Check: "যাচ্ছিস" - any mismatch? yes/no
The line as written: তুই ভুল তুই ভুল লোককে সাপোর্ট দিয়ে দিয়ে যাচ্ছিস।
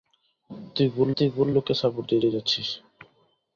no